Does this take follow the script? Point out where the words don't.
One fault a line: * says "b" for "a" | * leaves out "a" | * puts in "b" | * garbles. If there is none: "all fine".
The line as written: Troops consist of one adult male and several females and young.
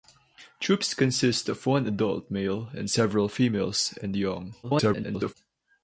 * garbles